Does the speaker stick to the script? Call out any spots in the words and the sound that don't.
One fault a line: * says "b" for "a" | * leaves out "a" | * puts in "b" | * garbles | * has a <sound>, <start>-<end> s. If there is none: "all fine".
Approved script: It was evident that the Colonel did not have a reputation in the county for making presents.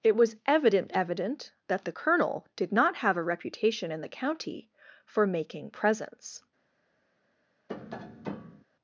* puts in "evident"
* has a tap, 7.7-8.7 s